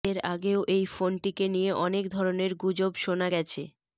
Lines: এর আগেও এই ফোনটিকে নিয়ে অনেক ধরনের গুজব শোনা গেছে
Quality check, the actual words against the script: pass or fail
pass